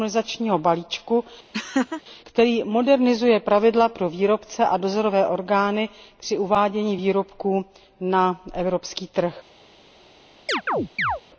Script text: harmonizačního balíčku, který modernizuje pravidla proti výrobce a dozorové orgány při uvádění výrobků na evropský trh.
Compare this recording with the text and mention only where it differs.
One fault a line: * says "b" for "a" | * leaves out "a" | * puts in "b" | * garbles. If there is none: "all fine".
* says "pro" for "proti"